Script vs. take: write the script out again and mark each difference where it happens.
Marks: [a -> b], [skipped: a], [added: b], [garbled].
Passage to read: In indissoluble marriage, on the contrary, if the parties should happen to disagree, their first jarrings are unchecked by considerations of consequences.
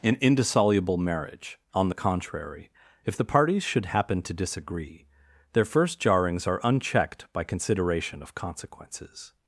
In indissoluble marriage, on the contrary, if the parties should happen to disagree, their first jarrings are unchecked by [considerations -> consideration] of consequences.